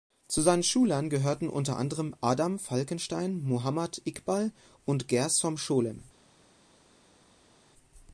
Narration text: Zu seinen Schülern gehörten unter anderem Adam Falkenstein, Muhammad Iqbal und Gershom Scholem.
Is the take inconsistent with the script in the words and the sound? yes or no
no